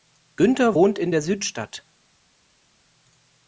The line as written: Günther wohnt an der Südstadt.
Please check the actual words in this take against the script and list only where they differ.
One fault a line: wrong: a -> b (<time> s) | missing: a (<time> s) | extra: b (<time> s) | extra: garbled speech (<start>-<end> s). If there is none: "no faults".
wrong: an -> in (1.0 s)